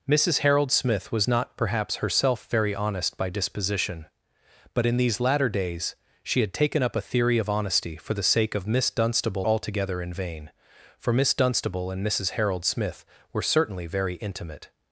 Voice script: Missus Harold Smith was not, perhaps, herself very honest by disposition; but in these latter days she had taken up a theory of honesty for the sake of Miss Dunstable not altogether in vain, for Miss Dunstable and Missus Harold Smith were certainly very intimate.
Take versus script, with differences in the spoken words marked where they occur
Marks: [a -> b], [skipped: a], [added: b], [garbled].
Missus Harold Smith was not, perhaps, herself very honest by disposition; but in these latter days she had taken up a theory of honesty for the sake of Miss Dunstable [skipped: not] altogether in vain, for Miss Dunstable and Missus Harold Smith were certainly very intimate.